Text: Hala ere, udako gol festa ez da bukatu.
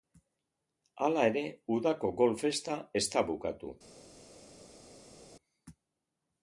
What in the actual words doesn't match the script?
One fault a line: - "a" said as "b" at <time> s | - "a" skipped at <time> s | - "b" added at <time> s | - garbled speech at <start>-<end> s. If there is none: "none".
none